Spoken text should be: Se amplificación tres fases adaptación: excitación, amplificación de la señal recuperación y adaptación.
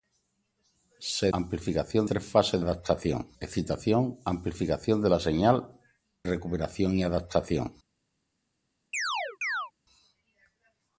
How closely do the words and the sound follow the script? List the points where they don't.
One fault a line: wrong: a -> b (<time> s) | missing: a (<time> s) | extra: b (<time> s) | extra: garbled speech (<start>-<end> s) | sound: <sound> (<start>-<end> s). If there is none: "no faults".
sound: chirp (8.9-9.7 s)